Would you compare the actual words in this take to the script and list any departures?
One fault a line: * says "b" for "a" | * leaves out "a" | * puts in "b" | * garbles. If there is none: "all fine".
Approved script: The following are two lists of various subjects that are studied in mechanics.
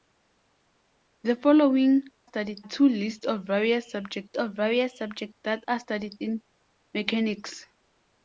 * says "studied" for "are"
* puts in "of various subjects"